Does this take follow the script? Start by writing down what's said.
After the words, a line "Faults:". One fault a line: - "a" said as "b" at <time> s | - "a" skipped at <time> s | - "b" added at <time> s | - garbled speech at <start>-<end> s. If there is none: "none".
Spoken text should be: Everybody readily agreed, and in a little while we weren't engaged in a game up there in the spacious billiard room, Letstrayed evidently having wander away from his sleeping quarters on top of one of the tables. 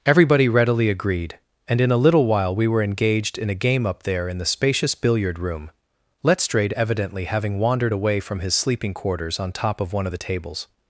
Everybody readily agreed, and in a little while we were engaged in a game up there in the spacious billiard room, Letstrayed evidently having wandered away from his sleeping quarters on top of one of the tables.
Faults:
- "weren't" said as "were" at 2.7 s
- "wander" said as "wandered" at 7.6 s